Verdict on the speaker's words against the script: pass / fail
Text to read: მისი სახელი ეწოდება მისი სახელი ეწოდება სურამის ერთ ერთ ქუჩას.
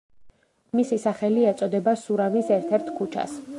fail